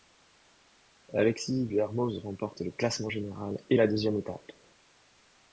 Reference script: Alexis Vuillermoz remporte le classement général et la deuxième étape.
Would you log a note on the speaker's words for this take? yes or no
no